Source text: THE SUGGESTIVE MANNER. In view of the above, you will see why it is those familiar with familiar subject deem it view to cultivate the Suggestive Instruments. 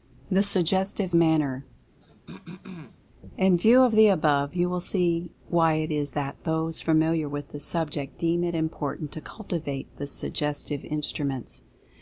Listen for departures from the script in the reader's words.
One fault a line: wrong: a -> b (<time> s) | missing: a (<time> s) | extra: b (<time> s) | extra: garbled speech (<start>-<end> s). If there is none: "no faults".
extra: that (6.1 s)
wrong: familiar -> the (7.5 s)
wrong: view -> important (8.6 s)